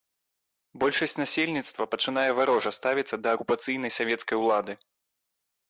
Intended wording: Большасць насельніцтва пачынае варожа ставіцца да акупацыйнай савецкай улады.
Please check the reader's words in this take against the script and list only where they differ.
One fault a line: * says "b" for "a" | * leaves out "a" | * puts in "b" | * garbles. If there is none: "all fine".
all fine